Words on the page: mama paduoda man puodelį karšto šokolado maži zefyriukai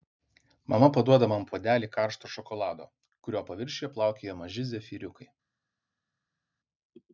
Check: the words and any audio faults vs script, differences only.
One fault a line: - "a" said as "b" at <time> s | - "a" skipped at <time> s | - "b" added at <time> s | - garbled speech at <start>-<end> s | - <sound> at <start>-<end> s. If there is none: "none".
- "kurio paviršiuje plaukioja" added at 3.3 s